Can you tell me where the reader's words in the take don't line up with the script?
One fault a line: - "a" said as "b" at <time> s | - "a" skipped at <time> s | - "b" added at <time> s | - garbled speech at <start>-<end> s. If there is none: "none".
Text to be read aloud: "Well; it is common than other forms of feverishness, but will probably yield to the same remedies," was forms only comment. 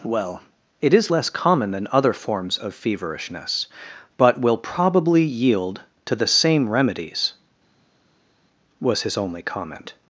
- "less" added at 1.1 s
- "forms" said as "his" at 9.0 s